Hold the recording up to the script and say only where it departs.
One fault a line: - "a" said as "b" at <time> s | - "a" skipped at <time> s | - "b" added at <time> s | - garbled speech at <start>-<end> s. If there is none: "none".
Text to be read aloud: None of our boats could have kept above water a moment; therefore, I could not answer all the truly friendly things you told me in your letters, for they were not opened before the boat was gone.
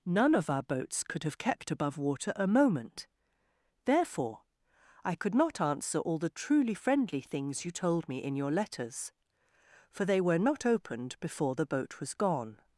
none